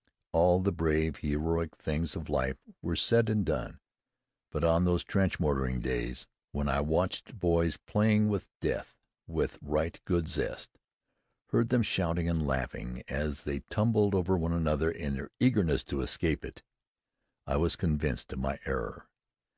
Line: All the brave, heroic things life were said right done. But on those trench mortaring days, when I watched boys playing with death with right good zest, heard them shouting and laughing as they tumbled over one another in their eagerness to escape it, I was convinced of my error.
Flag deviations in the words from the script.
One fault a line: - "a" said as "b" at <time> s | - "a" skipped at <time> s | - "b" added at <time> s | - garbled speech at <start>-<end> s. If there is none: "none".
- "of" added at 2.2 s
- "right" said as "and" at 3.3 s